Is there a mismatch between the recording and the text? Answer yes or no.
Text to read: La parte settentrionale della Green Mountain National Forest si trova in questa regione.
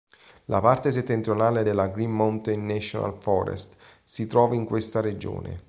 no